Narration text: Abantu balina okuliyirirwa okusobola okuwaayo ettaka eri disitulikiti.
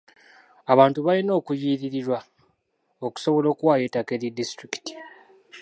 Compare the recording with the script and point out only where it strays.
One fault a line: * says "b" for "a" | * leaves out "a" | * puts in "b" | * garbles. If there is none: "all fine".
all fine